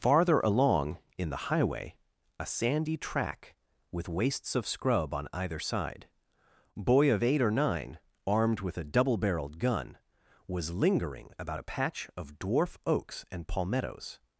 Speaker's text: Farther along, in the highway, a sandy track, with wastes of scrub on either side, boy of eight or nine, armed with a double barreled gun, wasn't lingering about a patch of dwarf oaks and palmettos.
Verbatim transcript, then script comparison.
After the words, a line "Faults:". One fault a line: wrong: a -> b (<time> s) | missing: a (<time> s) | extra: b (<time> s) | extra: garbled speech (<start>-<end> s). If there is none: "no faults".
Farther along, in the highway, a sandy track, with wastes of scrub on either side, boy of eight or nine, armed with a double barreled gun, was lingering about a patch of dwarf oaks and palmettos.
Faults:
wrong: wasn't -> was (10.5 s)